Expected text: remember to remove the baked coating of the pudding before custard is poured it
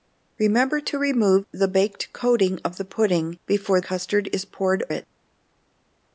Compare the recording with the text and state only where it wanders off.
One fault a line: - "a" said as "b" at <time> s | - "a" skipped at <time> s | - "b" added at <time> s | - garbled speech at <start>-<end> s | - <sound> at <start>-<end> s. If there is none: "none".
none